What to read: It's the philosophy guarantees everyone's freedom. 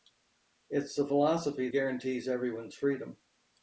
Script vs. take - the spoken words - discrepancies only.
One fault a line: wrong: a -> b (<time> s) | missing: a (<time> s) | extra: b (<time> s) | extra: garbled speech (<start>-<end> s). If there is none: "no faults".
no faults